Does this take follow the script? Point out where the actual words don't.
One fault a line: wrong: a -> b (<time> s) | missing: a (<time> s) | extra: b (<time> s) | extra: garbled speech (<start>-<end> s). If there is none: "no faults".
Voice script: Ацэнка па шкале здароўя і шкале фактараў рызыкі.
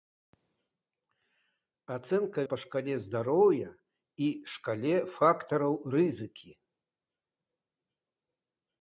no faults